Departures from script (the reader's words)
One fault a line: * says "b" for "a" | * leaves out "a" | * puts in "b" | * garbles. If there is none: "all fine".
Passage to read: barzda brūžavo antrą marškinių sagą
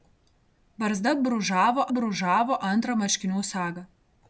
* puts in "brūžavo"